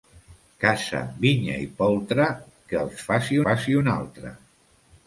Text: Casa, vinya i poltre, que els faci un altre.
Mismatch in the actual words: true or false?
true